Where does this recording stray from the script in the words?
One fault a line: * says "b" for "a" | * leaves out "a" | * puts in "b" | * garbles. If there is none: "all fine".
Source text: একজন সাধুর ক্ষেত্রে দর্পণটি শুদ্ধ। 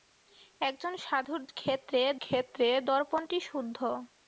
* puts in "ক্ষেত্রে"